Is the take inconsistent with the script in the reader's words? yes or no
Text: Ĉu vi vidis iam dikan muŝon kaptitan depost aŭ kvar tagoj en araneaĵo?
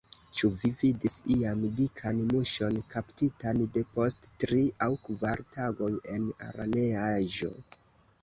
yes